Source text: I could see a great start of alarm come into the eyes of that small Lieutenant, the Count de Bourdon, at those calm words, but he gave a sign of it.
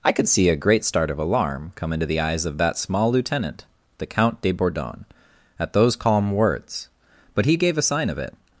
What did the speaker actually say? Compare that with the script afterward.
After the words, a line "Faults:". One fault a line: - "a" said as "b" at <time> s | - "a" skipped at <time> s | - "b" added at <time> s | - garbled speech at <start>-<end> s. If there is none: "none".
I could see a great start of alarm come into the eyes of that small Lieutenant, the Count de Bourdon, at those calm words, but he gave a sign of it.
Faults:
none